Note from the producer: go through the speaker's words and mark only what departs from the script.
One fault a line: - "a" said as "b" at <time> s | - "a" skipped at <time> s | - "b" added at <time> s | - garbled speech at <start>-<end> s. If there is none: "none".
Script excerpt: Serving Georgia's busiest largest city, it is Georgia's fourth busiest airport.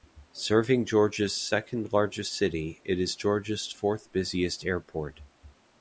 - "busiest" said as "second" at 1.4 s